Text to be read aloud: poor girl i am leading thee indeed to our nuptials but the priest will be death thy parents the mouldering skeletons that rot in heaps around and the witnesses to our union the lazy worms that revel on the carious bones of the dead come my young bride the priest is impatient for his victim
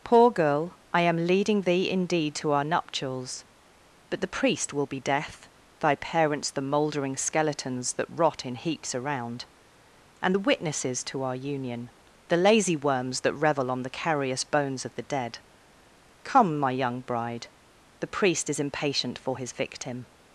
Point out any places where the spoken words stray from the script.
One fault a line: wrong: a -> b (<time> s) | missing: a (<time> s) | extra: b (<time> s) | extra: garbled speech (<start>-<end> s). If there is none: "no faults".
no faults